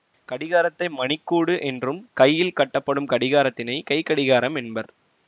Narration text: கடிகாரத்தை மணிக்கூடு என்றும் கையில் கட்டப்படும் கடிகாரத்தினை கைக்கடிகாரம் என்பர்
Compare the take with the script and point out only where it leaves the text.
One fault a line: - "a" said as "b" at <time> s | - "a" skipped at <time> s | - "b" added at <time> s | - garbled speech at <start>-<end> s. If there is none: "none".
none